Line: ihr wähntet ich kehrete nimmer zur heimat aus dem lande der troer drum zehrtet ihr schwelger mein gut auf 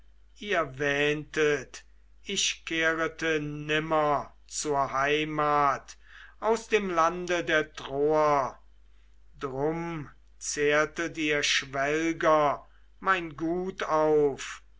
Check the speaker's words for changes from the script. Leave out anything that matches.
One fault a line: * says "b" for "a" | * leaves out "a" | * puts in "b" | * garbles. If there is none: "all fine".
all fine